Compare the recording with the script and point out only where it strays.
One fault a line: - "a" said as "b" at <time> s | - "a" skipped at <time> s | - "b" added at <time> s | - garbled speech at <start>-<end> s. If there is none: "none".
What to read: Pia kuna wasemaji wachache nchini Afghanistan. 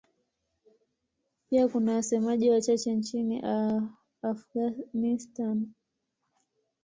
none